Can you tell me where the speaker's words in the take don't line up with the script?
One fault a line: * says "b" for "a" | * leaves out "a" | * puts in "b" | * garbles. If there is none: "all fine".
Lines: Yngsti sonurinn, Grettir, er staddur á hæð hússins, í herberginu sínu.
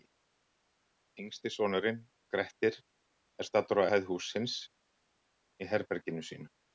all fine